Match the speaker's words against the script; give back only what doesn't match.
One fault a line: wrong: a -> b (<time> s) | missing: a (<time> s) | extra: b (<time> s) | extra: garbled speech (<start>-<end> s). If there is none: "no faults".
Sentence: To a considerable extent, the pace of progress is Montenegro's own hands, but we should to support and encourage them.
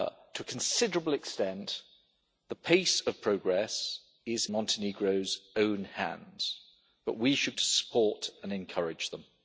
no faults